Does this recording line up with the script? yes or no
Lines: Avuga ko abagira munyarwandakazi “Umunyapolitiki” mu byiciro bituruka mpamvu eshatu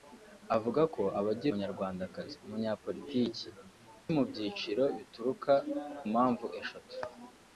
yes